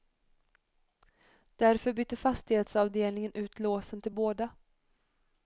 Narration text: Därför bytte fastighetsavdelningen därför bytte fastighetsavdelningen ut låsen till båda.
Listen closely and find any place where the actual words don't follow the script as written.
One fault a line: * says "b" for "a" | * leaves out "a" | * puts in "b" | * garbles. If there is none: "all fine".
* leaves out "därför bytte fastighetsavdelningen"